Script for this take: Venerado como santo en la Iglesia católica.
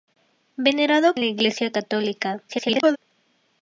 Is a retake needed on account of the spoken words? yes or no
yes